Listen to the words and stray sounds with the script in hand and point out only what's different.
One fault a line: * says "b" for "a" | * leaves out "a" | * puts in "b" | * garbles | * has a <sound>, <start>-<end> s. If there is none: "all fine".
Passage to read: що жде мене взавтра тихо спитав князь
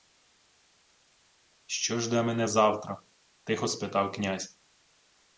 all fine